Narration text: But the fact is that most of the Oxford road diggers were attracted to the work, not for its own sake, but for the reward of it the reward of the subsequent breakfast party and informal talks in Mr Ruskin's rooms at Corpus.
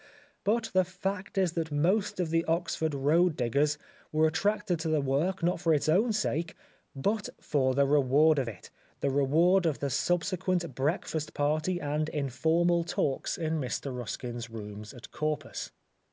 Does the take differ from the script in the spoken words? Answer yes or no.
no